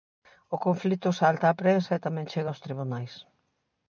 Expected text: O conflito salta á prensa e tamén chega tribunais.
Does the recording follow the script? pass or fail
fail